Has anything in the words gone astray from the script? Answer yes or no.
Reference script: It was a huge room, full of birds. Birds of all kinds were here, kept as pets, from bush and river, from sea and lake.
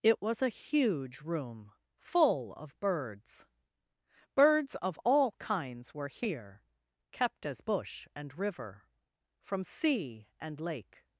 yes